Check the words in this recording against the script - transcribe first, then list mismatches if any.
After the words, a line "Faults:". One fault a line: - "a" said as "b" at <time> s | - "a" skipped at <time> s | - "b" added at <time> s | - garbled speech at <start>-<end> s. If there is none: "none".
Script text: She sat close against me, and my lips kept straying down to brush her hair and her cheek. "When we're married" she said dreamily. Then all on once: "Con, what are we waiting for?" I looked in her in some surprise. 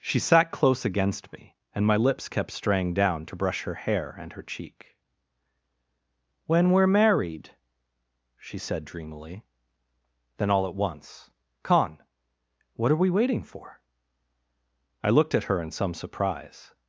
She sat close against me, and my lips kept straying down to brush her hair and her cheek. "When we're married" she said dreamily. Then all at once: "Con, what are we waiting for?" I looked at her in some surprise.
Faults:
- "on" said as "at" at 10.7 s
- "in" said as "at" at 15.4 s